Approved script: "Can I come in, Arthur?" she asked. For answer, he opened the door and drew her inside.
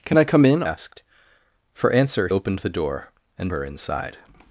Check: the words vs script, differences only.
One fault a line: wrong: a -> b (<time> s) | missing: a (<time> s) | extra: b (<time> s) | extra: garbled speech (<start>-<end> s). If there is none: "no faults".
missing: Arthur she (0.6 s)
missing: he (2.3 s)
missing: drew (3.5 s)